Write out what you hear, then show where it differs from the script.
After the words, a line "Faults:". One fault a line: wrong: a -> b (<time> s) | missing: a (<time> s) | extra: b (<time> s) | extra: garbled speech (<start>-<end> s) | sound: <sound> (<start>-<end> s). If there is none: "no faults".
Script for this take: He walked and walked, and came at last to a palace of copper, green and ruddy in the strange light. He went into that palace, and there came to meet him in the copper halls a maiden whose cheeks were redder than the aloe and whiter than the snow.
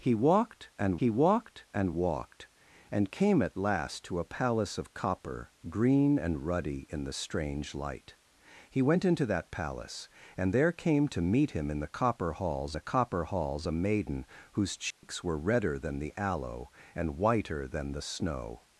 He walked and he walked and walked, and came at last to a palace of copper, green and ruddy in the strange light. He went into that palace, and there came to meet him in the copper halls the copper halls a maiden whose cheeks were redder than the aloe and whiter than the snow.
Faults:
extra: he (1.0 s)
extra: walked and (1.9 s)
extra: the copper halls (12.7 s)
sound: dropout (14.9-15.0 s)